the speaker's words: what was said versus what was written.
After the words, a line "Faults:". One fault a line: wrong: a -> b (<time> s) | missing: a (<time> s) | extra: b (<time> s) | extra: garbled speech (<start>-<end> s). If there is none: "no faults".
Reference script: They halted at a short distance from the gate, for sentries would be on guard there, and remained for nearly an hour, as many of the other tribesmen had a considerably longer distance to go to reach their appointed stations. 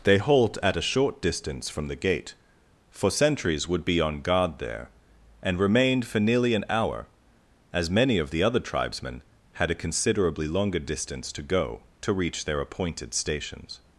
They halt at a short distance from the gate, for sentries would be on guard there, and remained for nearly an hour, as many of the other tribesmen had a considerably longer distance to go to reach their appointed stations.
Faults:
wrong: halted -> halt (0.2 s)